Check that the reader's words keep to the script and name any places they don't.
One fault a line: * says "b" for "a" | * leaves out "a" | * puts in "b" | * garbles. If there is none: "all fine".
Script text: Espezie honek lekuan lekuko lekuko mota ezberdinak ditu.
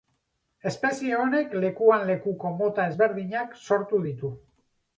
* leaves out "lekuko"
* puts in "sortu"